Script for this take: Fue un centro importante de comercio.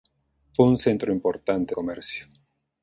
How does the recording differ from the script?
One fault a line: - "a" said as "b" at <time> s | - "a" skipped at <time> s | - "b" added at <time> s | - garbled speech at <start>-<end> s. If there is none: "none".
- "de" skipped at 1.8 s